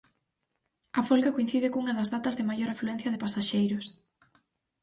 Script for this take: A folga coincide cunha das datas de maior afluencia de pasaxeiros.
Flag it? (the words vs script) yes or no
no